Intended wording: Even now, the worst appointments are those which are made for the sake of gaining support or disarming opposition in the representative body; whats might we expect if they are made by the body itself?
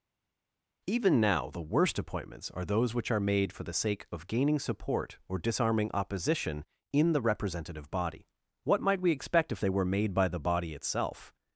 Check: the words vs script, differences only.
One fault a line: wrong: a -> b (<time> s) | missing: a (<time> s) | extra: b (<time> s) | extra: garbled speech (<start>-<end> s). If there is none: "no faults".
wrong: whats -> what (8.6 s)
wrong: are -> were (9.7 s)